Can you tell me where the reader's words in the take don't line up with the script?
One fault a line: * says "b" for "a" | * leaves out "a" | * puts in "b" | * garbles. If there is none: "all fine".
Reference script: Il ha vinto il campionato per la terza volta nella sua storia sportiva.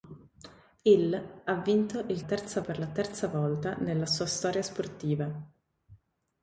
* says "terza" for "campionato"